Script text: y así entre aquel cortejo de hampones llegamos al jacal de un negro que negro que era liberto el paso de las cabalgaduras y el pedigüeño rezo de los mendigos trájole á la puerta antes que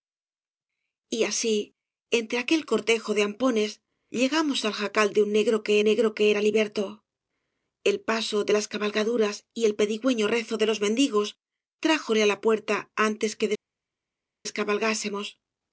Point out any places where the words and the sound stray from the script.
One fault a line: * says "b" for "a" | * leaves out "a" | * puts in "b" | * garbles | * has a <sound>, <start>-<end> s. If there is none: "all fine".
all fine